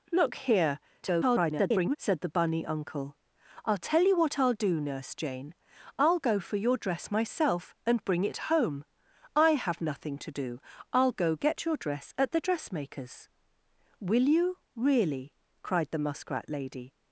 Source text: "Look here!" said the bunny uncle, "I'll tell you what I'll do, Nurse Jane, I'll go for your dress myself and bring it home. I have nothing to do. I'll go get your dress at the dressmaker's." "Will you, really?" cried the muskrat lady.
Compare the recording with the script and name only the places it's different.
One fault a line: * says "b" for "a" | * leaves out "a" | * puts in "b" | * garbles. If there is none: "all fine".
* garbles